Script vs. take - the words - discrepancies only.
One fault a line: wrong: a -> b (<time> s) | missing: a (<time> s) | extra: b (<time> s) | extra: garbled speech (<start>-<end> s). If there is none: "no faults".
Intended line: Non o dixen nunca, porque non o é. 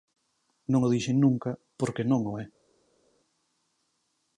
no faults